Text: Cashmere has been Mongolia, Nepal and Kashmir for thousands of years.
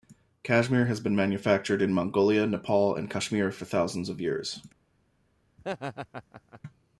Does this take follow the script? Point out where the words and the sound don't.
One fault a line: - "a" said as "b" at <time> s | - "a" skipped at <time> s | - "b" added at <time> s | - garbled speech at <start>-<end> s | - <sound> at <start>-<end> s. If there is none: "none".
- "manufactured in" added at 1.1 s
- laugh at 5.6-6.6 s